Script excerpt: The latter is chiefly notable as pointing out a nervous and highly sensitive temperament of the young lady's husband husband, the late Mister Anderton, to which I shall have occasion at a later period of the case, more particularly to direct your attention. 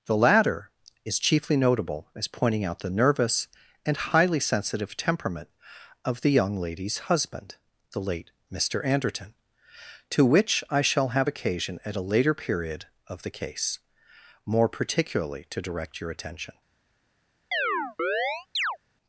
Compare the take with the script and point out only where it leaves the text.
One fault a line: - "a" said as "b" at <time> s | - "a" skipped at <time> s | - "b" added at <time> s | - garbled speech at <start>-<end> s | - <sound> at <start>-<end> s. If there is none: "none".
- "a" said as "the" at 2.8 s
- "husband" skipped at 7.5 s
- chirp at 17.5-18.8 s